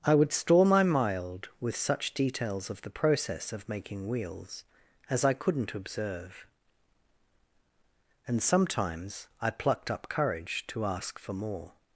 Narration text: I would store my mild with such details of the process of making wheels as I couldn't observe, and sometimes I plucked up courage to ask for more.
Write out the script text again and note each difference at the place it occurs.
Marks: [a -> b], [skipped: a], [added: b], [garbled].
I would store my mild with such details of the process of making wheels as I couldn't observe, and sometimes I plucked up courage to ask for more.